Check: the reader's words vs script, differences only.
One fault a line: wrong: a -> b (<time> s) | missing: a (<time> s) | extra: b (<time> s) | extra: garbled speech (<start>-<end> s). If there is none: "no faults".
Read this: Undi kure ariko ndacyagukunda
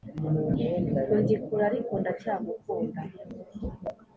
no faults